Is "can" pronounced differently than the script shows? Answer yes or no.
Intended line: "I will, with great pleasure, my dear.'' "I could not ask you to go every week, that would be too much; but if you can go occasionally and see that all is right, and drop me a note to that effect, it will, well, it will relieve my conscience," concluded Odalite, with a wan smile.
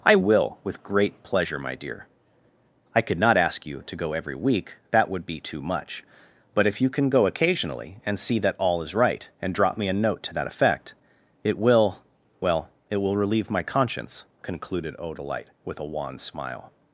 no